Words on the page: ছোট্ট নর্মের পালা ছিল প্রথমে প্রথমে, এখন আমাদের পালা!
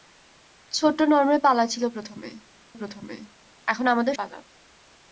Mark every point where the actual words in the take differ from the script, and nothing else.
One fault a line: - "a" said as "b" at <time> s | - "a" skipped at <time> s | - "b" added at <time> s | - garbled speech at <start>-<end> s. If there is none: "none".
none